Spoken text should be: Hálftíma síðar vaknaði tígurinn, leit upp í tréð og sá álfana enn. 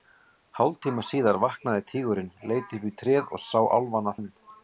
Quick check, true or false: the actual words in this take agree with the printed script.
true